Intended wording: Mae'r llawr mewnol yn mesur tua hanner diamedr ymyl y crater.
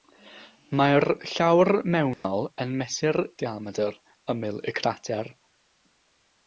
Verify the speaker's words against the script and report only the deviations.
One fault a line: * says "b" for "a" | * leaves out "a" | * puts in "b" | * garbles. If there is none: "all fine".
* leaves out "tua hanner"